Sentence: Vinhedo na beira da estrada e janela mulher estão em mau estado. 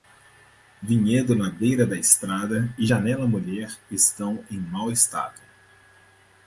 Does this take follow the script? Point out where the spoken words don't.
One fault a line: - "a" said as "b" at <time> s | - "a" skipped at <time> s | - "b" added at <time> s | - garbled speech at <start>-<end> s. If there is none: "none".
none